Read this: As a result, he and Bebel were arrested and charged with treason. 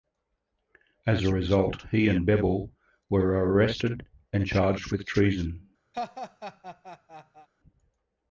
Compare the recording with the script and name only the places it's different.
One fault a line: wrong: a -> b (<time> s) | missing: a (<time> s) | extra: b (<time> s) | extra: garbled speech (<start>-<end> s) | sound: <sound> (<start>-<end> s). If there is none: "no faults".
sound: laugh (5.9-7.5 s)